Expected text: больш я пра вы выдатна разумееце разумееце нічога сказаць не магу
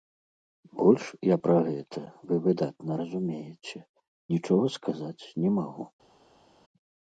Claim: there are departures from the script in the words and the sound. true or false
true